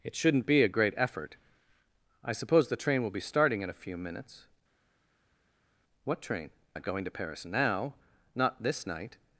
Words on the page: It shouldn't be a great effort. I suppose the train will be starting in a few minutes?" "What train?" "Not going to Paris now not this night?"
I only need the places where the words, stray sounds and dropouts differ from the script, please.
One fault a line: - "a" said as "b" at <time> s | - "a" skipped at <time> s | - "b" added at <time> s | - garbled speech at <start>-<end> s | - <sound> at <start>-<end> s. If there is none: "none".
none